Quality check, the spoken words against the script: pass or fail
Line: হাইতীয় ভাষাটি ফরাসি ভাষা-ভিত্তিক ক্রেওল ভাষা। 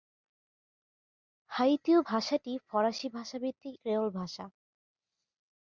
pass